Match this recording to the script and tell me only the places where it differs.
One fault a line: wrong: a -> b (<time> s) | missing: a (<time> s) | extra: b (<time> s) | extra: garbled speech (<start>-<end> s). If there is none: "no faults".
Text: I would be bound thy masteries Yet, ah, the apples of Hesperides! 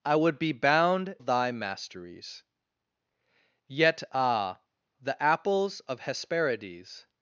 no faults